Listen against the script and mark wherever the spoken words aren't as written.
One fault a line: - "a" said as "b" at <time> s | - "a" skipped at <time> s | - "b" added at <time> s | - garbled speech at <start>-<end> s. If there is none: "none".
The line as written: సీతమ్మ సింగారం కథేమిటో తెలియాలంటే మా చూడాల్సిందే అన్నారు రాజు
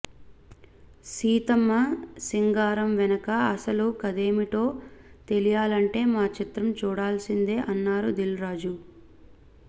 - "వెనక అసలు" added at 3.0 s
- "చిత్రం" added at 6.4 s
- "దిల్" added at 8.2 s